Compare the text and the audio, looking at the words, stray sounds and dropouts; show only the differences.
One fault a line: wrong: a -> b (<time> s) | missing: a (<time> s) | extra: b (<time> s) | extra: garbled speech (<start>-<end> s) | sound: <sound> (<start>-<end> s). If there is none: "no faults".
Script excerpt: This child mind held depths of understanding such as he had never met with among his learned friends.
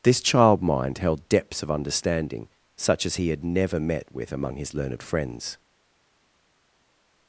no faults